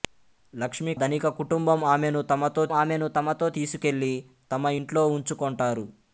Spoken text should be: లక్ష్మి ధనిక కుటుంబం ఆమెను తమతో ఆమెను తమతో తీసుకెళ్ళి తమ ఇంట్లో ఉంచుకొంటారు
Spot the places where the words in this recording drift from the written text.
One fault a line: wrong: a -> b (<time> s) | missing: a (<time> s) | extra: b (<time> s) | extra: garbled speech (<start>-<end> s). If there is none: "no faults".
no faults